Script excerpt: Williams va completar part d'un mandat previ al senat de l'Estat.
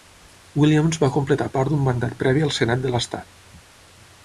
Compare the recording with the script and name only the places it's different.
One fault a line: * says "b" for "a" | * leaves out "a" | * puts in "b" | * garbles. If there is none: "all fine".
all fine